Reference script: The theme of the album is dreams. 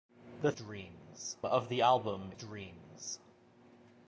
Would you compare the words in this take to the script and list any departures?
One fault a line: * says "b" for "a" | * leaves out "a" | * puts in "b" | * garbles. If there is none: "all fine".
* says "dreams" for "theme"
* leaves out "is"